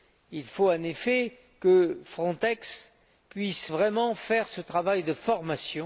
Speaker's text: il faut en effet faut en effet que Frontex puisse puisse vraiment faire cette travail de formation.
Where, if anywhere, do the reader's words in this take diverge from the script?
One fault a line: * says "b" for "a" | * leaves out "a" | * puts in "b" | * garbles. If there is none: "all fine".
* leaves out "faut en effet"
* leaves out "puisse"
* says "ce" for "cette"